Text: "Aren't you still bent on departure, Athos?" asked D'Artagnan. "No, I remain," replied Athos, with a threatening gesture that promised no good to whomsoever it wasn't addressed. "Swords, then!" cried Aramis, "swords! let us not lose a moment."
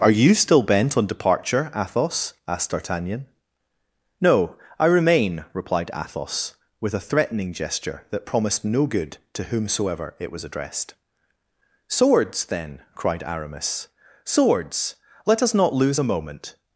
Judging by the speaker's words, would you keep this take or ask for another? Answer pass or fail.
fail